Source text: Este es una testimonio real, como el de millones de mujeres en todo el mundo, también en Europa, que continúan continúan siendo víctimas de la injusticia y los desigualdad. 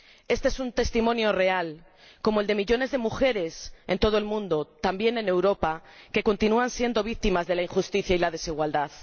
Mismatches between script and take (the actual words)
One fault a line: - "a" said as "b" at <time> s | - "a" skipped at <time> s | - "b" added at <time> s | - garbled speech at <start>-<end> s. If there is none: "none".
- "una" said as "un" at 0.6 s
- "continúan" skipped at 6.7 s
- "los" said as "la" at 8.2 s